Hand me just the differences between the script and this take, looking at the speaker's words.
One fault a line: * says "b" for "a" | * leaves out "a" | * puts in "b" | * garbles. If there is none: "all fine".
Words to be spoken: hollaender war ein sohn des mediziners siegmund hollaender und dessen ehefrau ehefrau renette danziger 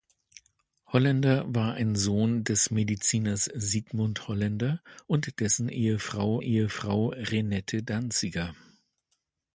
all fine